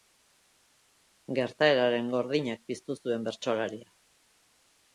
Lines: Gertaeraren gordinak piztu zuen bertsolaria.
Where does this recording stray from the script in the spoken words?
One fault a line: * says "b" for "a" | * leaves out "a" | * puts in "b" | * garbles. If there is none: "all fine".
all fine